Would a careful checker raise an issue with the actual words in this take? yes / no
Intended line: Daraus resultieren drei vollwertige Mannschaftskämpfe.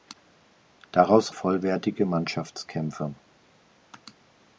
yes